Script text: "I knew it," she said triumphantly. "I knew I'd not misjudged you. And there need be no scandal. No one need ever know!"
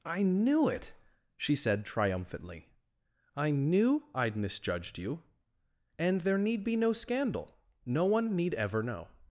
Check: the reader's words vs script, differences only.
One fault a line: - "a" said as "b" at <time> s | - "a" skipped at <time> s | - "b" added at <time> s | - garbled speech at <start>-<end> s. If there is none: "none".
- "not" skipped at 4.3 s